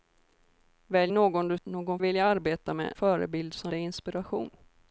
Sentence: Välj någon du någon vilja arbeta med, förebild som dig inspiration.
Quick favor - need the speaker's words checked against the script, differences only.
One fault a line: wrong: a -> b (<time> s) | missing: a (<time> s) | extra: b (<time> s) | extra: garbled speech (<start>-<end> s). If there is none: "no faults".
no faults